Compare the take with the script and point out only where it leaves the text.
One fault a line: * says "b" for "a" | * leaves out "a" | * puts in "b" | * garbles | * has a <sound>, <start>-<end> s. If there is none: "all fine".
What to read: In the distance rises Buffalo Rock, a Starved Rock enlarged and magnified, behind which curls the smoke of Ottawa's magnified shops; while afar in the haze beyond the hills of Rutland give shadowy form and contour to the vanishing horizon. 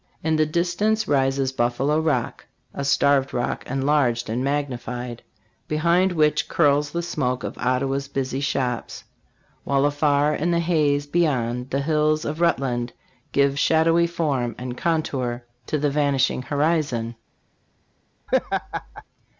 * says "busy" for "magnified"
* has a laugh, 18.3-19.0 s